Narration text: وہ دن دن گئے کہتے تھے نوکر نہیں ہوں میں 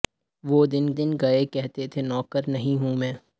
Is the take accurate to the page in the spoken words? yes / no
yes